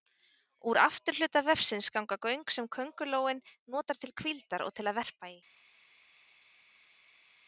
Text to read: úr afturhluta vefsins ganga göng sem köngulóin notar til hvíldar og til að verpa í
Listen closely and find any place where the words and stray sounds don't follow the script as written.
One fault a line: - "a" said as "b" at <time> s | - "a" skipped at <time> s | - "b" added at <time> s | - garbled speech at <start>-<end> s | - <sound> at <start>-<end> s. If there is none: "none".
none